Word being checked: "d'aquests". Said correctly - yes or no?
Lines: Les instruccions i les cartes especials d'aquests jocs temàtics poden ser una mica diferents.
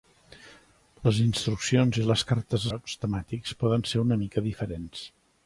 no